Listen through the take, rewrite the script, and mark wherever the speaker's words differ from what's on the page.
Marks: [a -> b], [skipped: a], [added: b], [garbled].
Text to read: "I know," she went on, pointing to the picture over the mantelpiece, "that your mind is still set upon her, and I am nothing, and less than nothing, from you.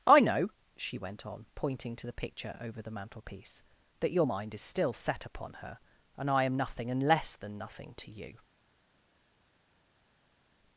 "I know," she went on, pointing to the picture over the mantelpiece, "that your mind is still set upon her, and I am nothing, and less than nothing, [from -> to] you.